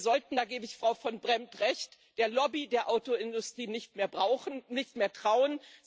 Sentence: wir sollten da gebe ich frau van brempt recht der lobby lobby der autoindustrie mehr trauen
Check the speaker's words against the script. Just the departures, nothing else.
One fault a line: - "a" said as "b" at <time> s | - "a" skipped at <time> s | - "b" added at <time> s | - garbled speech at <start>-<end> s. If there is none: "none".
- "lobby" skipped at 2.7 s
- "nicht" added at 3.7 s